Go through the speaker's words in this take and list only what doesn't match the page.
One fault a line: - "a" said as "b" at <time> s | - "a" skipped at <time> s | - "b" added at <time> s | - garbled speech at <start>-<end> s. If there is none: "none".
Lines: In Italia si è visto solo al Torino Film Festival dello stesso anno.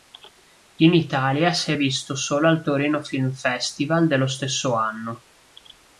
none